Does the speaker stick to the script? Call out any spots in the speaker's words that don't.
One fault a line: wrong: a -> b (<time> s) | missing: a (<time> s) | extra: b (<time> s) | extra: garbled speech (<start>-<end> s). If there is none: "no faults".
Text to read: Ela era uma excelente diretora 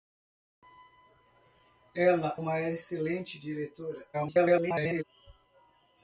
missing: era (2.4 s)
extra: garbled speech (4.1-5.0 s)